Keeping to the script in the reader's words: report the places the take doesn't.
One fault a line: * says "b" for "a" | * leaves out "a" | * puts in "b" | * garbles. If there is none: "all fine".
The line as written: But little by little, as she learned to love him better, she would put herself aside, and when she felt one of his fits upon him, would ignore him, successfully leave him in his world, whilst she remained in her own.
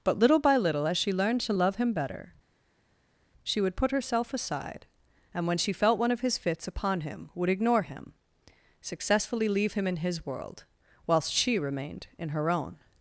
all fine